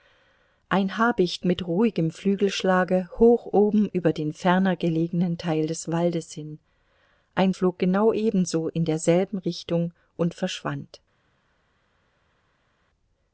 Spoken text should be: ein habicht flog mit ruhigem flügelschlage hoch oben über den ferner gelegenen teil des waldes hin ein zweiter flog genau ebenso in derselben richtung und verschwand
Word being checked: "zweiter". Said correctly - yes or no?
no